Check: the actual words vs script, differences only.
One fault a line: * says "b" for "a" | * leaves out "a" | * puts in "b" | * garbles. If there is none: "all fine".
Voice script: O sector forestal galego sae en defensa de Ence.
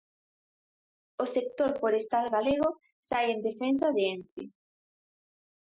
all fine